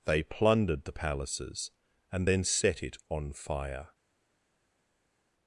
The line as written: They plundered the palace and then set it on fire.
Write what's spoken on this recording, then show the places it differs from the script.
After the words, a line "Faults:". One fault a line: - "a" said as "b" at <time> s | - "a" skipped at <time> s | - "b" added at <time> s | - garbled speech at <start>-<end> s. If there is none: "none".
They plundered the palaces and then set it on fire.
Faults:
- "palace" said as "palaces" at 0.9 s